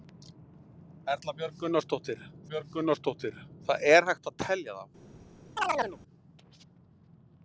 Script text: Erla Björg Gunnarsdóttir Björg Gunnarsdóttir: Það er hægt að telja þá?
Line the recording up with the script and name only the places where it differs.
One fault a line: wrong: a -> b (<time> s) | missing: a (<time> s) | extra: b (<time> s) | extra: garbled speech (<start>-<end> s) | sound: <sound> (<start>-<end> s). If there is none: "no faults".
sound: chirp (5.6-6.0 s)